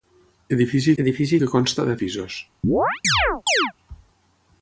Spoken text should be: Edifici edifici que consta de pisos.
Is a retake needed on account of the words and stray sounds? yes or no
yes